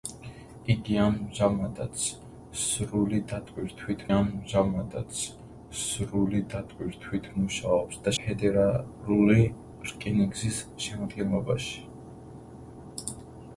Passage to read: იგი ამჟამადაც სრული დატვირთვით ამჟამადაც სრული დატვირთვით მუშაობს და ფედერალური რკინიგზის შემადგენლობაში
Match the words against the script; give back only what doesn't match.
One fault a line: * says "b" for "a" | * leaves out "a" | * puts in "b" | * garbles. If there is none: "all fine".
all fine